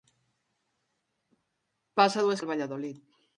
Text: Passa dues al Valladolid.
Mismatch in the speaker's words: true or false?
false